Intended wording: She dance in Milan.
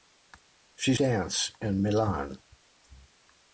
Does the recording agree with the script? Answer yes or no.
yes